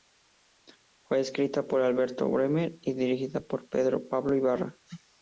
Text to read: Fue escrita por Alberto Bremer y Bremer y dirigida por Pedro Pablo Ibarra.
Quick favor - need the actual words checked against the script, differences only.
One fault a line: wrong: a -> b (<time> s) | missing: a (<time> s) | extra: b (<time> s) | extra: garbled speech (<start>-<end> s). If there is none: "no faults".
missing: Bremer y (3.0 s)